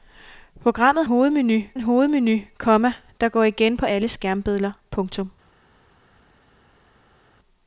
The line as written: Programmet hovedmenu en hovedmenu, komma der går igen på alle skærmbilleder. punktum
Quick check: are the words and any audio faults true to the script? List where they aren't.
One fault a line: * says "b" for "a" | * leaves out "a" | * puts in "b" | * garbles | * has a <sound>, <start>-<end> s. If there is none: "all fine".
all fine